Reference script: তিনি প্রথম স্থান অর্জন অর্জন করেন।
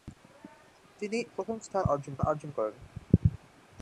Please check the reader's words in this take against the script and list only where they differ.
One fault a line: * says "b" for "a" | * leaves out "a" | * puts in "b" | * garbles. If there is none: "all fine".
all fine